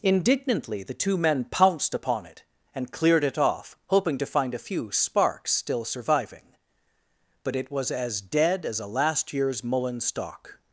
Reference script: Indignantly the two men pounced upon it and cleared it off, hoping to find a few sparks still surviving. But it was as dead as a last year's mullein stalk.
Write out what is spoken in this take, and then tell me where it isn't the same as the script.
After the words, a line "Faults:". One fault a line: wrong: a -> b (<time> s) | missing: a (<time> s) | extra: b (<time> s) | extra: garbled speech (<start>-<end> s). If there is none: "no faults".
Indignantly the two men pounced upon it and cleared it off, hoping to find a few sparks still surviving. But it was as dead as a last year's mullein stalk.
Faults:
no faults